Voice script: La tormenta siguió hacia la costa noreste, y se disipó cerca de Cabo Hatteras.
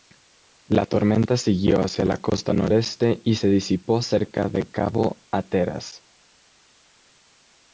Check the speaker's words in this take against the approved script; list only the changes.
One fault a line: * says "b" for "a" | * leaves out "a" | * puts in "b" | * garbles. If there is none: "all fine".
all fine